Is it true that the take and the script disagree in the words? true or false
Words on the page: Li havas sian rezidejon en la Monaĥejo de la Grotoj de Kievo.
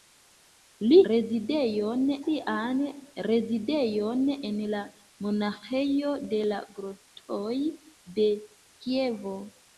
true